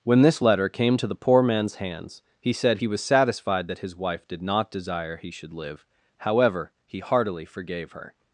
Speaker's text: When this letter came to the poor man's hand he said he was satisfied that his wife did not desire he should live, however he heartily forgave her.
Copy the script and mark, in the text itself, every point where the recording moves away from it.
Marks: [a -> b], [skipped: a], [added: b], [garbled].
When this letter came to the poor man's [hand -> hands] he said he was satisfied that his wife did not desire he should live, however he heartily forgave her.